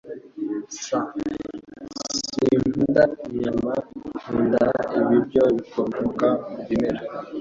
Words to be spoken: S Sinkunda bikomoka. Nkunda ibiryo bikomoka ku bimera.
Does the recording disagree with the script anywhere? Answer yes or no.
yes